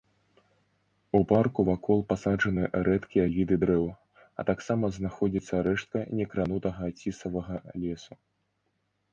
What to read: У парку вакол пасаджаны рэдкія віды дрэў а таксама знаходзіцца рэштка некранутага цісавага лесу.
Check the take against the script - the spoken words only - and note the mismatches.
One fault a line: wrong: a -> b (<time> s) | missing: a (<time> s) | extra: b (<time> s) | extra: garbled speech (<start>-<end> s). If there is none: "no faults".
no faults